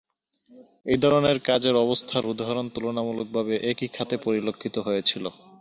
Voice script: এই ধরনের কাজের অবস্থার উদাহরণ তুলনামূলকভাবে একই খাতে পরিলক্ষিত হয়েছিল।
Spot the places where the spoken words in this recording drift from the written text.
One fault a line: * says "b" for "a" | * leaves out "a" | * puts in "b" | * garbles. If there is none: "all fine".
all fine